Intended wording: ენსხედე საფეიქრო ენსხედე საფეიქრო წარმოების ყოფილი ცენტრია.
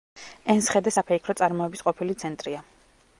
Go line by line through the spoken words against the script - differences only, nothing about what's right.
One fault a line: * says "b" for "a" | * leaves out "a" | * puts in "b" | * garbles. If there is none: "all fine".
* leaves out "ენსხედე საფეიქრო"